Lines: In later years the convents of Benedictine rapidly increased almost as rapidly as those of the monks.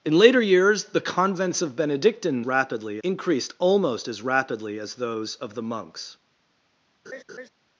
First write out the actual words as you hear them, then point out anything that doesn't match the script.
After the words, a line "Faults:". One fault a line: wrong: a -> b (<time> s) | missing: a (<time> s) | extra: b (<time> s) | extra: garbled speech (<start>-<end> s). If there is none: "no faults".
In later years the convents of Benedictine rapidly increased almost as rapidly as those of the monks.
Faults:
no faults